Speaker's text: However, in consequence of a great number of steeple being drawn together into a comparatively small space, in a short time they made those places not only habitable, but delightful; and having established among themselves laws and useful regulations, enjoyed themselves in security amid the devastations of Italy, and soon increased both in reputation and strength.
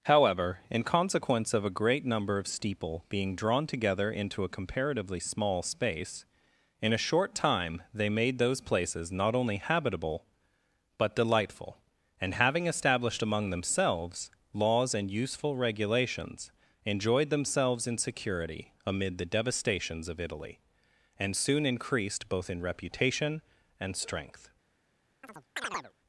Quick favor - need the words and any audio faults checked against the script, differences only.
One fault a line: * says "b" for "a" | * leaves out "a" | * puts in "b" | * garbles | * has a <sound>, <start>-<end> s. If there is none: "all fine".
* has a chirp, 25.2-25.9 s